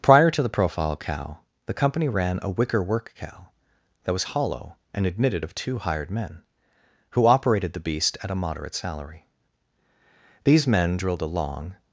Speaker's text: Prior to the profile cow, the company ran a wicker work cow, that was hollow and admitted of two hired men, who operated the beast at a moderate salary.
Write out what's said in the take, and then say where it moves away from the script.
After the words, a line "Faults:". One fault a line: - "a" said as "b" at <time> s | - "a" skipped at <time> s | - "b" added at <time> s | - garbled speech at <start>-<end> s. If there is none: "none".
Prior to the profile cow, the company ran a wicker work cow, that was hollow and admitted of two hired men, who operated the beast at a moderate salary. These men drilled a long
Faults:
- "These men drilled a long" added at 10.4 s